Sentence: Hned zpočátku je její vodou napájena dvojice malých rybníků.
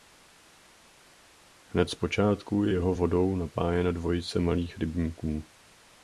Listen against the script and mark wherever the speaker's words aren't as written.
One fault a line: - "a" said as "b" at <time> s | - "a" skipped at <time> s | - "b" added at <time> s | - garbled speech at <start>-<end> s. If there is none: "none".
- "její" said as "jeho" at 2.7 s